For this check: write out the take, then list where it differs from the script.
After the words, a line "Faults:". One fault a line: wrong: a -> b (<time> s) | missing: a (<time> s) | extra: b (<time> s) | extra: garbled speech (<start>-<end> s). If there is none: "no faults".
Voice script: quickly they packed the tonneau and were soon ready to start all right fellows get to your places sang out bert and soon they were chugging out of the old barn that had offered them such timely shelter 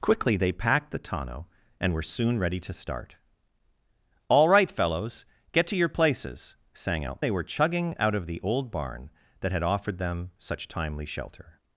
quickly they packed the tonneau and were soon ready to start all right fellows get to your places sang out they were chugging out of the old barn that had offered them such timely shelter
Faults:
missing: bert and soon (7.2 s)